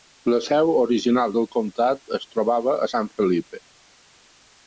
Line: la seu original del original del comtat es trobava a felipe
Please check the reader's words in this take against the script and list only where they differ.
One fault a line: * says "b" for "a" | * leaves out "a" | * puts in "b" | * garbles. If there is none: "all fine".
* leaves out "original del"
* puts in "san"